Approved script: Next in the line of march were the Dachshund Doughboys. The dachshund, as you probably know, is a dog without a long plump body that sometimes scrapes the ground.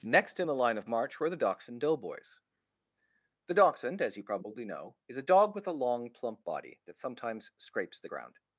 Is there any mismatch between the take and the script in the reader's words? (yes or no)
yes